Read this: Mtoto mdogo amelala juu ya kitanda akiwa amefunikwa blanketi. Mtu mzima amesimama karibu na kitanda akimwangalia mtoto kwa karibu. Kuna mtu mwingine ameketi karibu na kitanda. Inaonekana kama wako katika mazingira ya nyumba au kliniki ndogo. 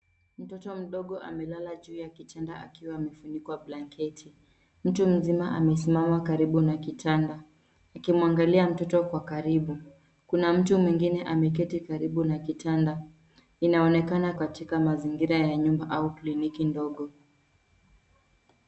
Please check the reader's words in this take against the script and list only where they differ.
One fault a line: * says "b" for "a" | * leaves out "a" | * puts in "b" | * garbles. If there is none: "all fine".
* leaves out "kama wako"